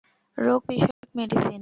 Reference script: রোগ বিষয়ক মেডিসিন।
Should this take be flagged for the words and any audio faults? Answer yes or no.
yes